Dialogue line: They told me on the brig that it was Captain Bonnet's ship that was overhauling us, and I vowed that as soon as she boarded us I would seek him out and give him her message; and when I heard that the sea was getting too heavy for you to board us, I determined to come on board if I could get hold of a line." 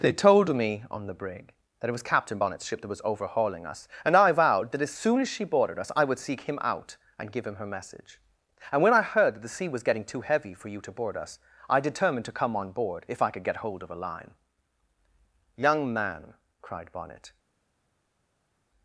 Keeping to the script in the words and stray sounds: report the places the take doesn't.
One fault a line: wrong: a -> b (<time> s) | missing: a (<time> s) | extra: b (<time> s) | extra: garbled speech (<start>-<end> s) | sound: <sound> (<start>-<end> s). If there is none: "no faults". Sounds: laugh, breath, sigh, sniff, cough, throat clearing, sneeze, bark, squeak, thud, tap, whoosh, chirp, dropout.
extra: Young man cried Bonnet (15.6 s)